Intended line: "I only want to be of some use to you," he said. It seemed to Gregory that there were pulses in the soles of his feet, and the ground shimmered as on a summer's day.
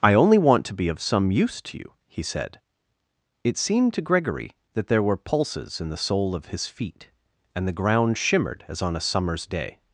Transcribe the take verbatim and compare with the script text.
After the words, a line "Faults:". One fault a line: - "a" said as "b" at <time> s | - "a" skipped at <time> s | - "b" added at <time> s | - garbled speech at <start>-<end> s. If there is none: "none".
"I only want to be of some use to you," he said. It seemed to Gregory that there were pulses in the sole of his feet, and the ground shimmered as on a summer's day.
Faults:
- "soles" said as "sole" at 6.0 s